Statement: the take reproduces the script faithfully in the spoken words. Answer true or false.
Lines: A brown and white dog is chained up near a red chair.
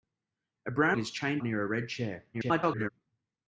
false